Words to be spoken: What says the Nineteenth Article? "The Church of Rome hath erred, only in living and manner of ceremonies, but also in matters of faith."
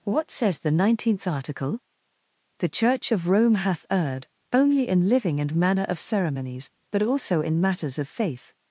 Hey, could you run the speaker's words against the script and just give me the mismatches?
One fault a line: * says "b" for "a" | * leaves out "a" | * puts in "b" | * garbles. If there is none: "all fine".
all fine